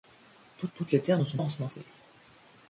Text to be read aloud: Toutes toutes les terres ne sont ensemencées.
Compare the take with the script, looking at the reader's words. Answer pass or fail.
pass